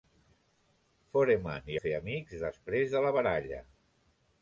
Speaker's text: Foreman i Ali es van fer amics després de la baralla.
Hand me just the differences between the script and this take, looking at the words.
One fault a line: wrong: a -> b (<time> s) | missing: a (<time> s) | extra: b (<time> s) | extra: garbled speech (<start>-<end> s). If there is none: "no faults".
missing: Ali es van (1.8 s)